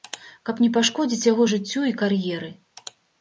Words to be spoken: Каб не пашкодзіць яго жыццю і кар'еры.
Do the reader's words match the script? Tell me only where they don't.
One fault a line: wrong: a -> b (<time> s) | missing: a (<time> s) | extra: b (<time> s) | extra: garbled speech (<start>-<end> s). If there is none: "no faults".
no faults